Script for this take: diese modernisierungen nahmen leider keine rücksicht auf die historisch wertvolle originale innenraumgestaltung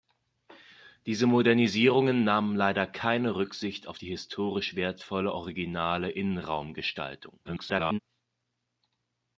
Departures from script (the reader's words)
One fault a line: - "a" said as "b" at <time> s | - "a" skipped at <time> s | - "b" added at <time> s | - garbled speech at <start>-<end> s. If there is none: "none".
- garbled speech at 7.4-8.0 s